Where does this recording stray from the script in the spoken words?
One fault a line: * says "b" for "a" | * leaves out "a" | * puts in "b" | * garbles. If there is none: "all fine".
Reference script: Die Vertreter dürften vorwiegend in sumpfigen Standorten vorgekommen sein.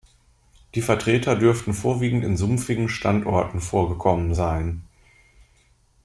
all fine